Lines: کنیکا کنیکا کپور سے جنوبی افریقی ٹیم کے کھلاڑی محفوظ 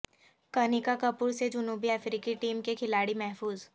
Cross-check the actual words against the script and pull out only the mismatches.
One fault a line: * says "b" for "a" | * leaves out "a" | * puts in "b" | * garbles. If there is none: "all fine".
* leaves out "کنیکا"